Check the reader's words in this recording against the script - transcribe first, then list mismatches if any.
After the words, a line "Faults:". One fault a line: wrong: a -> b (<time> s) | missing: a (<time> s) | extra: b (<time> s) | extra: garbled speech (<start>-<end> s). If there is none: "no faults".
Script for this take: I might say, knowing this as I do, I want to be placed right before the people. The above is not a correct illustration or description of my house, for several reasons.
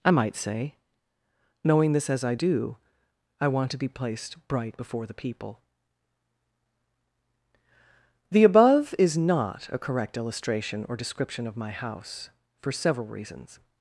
I might say, knowing this as I do, I want to be placed bright before the people. The above is not a correct illustration or description of my house, for several reasons.
Faults:
wrong: right -> bright (4.5 s)